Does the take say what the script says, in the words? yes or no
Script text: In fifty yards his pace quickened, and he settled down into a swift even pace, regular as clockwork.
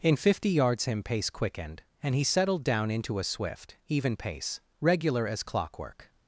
no